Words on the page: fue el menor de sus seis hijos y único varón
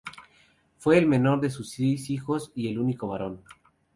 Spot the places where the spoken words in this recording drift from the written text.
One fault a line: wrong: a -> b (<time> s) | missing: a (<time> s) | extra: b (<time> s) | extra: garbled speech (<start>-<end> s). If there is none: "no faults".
extra: el (2.7 s)